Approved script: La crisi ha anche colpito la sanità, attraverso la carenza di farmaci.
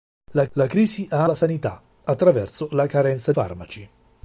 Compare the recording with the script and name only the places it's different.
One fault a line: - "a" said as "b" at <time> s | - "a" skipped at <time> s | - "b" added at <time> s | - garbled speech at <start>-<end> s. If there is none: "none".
- "la" added at 0.5 s
- "anche colpito" skipped at 1.2 s
- "di" skipped at 3.3 s